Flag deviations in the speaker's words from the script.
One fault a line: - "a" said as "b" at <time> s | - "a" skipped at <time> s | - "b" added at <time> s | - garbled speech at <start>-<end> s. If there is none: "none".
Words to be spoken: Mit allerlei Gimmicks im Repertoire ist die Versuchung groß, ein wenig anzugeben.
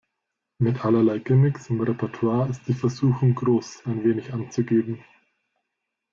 none